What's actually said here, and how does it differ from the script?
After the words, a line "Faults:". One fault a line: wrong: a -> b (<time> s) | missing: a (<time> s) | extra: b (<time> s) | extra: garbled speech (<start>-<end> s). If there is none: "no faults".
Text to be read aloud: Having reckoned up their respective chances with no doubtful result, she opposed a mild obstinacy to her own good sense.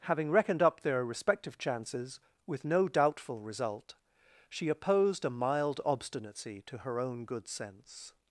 Having reckoned up their respective chances with no doubtful result, she opposed a mild obstinacy to her own good sense.
Faults:
no faults